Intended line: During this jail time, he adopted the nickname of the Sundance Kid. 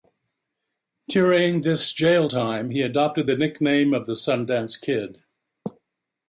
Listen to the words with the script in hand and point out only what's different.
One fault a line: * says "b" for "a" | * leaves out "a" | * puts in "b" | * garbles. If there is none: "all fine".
all fine